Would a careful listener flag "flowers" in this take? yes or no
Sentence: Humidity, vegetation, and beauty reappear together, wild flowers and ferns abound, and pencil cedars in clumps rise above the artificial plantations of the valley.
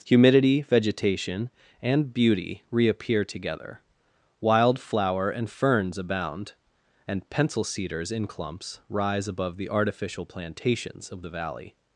yes